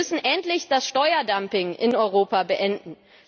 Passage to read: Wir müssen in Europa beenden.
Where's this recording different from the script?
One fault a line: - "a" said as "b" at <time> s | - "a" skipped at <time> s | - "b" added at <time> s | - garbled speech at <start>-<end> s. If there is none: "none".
- "endlich das Steuerdumping" added at 0.2 s